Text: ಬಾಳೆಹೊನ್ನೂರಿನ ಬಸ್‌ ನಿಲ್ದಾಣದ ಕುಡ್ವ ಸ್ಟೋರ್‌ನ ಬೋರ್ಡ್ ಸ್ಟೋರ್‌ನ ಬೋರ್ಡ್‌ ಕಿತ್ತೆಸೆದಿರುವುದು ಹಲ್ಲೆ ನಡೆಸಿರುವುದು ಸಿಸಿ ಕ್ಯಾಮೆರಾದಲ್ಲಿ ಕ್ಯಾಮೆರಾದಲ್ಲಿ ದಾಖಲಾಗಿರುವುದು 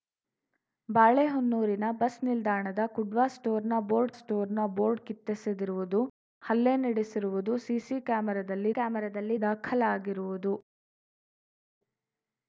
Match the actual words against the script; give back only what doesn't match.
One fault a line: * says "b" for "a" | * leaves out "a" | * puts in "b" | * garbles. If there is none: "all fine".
all fine